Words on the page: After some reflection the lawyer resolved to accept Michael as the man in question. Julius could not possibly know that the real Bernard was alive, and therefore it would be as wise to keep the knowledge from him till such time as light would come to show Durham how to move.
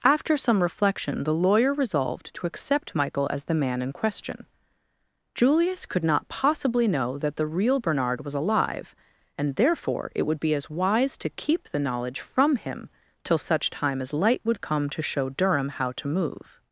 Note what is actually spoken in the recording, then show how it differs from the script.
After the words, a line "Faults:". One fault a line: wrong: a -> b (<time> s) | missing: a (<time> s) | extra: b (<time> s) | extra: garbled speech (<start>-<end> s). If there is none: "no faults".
After some reflection the lawyer resolved to accept Michael as the man in question. Julius could not possibly know that the real Bernard was alive, and therefore it would be as wise to keep the knowledge from him till such time as light would come to show Durham how to move.
Faults:
no faults